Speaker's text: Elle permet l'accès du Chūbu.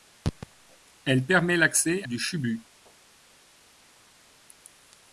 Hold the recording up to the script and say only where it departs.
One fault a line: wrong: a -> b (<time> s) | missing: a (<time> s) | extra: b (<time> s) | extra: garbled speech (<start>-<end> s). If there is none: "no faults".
no faults